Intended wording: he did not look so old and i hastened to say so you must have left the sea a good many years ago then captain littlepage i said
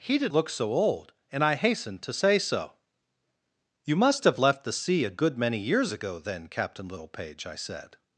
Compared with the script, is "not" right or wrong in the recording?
wrong